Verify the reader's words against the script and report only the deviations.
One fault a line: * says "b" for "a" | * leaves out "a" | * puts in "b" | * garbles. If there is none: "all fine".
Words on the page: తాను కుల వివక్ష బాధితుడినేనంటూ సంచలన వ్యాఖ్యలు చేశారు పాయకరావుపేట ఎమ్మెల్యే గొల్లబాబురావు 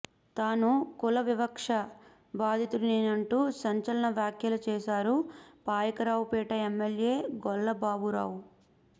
all fine